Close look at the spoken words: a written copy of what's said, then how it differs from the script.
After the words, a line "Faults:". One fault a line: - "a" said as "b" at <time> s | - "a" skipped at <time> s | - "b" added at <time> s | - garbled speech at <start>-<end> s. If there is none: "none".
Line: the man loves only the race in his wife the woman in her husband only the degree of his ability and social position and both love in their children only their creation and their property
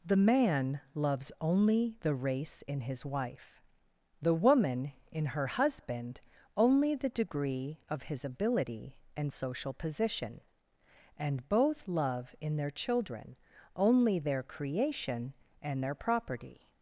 the man loves only the race in his wife the woman in her husband only the degree of his ability and social position and both love in their children only their creation and their property
Faults:
none